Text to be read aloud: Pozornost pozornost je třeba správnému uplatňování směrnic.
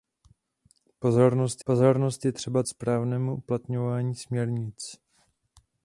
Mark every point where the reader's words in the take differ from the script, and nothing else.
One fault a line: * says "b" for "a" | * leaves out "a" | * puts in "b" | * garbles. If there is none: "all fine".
all fine